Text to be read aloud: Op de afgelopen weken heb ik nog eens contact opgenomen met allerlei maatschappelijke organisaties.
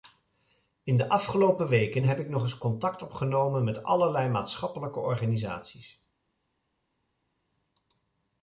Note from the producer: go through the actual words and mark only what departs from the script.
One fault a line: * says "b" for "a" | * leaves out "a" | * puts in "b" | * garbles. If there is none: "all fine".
* says "In" for "Op"